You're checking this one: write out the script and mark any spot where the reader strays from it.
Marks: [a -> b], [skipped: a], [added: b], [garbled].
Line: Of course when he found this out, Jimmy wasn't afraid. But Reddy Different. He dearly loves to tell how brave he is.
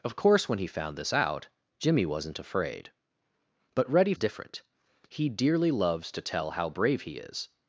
Of course when he found this out, Jimmy wasn't afraid. But Reddy Different. He dearly loves to tell how brave he is.